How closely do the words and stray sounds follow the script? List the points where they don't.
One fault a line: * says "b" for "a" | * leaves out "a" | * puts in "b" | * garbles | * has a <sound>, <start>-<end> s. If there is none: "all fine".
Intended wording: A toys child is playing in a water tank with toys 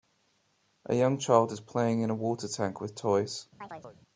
* says "young" for "toys"
* has a chirp, 3.6-4.0 s